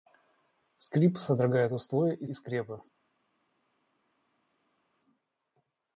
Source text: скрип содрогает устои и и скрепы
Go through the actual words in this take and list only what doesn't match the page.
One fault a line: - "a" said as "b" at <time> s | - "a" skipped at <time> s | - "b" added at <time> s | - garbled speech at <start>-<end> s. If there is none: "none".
none